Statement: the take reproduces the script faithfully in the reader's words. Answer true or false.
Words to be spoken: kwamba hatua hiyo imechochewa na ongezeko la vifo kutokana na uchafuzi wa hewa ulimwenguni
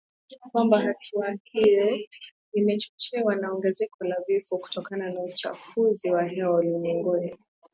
true